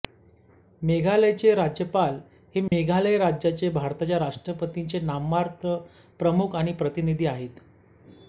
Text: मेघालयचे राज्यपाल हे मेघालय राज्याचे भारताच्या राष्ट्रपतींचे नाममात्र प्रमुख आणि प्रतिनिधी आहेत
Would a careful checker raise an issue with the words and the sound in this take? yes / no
yes